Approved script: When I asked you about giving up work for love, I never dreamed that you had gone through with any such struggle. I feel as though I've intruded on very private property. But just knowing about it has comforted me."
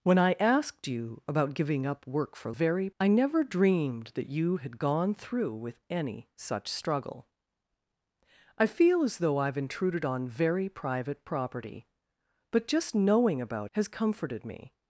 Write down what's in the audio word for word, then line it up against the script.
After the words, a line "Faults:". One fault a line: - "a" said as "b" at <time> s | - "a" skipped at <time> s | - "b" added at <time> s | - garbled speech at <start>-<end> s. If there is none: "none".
When I asked you about giving up work for very, I never dreamed that you had gone through with any such struggle. I feel as though I've intruded on very private property. But just knowing about has comforted me."
Faults:
- "love" said as "very" at 2.5 s
- "it" skipped at 13.7 s